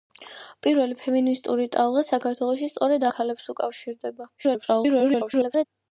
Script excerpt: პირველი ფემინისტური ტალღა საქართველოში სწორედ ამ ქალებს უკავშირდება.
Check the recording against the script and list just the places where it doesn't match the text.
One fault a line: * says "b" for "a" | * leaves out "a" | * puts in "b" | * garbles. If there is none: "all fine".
* leaves out "ამ"
* garbles